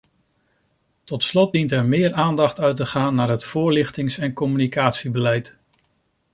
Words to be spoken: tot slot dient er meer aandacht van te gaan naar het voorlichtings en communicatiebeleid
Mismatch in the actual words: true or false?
true